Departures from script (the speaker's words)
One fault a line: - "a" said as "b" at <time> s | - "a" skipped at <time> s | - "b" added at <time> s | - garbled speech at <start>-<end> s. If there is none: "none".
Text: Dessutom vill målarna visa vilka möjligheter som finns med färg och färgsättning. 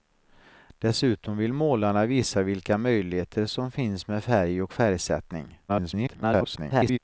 - garbled speech at 5.7-7.0 s